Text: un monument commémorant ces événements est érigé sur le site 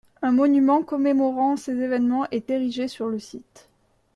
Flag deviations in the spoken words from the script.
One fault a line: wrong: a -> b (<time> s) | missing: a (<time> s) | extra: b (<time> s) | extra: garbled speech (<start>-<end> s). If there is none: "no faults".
no faults